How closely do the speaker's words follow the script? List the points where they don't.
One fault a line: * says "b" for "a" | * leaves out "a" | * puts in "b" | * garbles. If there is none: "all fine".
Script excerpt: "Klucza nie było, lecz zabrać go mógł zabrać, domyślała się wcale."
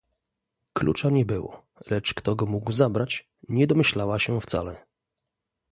* says "kto" for "zabrać"
* puts in "nie"